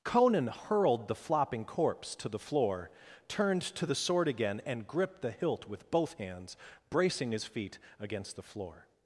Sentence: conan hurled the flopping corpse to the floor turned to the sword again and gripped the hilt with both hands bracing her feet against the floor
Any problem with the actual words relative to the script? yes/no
yes